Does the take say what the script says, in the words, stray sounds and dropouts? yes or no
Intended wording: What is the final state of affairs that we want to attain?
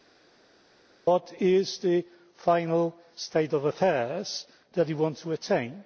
yes